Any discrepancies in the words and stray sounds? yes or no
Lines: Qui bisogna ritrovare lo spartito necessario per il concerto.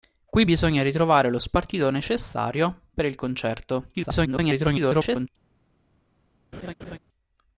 yes